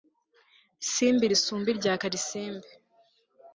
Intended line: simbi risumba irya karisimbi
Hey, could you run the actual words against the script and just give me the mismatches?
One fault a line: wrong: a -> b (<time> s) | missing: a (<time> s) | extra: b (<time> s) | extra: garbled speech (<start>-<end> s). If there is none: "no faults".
no faults